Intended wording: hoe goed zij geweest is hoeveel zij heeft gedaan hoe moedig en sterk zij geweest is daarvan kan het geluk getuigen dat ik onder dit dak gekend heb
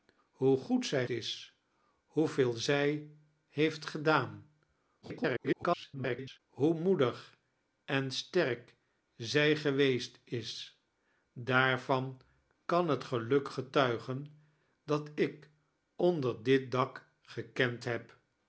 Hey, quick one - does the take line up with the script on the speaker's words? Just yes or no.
no